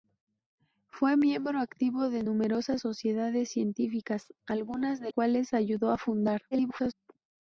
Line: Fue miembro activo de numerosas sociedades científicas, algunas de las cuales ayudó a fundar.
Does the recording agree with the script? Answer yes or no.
no